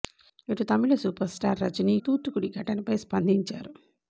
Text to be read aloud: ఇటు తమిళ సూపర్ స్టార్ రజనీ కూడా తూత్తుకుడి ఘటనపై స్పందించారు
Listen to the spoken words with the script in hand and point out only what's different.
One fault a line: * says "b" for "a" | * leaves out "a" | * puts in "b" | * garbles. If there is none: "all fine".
* leaves out "కూడా"